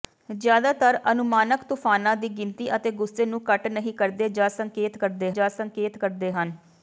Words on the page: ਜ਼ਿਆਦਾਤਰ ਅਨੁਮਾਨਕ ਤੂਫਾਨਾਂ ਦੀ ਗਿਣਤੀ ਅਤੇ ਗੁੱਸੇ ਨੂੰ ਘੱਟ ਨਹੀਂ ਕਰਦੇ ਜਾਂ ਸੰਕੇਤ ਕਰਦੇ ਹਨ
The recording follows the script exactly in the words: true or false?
false